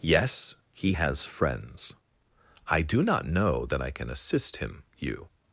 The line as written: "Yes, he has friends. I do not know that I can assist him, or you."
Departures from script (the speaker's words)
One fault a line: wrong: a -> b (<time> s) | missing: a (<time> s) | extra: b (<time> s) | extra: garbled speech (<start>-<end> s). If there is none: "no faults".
missing: or (4.8 s)